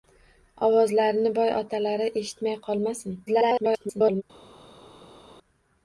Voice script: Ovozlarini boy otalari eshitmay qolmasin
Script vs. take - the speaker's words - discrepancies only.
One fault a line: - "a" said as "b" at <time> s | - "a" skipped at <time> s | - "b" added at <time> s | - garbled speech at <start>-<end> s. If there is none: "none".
- garbled speech at 3.3-4.2 s